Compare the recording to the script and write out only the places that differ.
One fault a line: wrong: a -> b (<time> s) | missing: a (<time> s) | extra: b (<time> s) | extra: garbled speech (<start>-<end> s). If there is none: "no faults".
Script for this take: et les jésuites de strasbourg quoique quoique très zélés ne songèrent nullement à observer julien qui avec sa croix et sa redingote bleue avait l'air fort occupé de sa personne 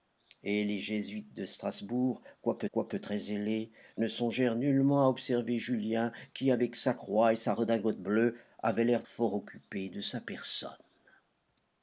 no faults